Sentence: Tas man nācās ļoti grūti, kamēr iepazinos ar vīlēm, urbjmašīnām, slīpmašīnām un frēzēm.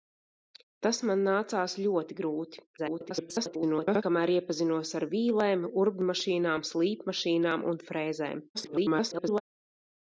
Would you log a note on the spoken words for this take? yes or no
yes